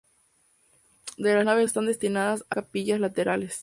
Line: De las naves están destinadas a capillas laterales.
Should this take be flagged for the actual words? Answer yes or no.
no